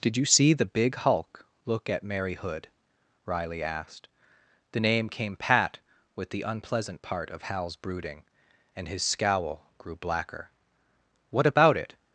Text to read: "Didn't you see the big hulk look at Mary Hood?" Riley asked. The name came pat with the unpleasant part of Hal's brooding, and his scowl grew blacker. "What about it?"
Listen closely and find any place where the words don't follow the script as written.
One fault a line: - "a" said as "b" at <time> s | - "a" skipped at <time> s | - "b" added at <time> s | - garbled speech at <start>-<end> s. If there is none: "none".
- "Didn't" said as "Did" at 0.0 s